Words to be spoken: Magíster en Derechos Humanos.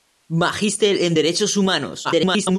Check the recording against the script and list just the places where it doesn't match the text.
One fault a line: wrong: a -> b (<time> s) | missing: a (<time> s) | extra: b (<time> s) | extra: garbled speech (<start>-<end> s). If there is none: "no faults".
extra: garbled speech (2.0-2.6 s)